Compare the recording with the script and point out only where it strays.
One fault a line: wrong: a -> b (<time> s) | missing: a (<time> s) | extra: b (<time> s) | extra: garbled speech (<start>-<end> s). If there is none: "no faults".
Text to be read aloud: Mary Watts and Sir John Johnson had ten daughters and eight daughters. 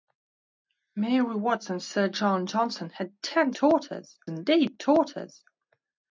no faults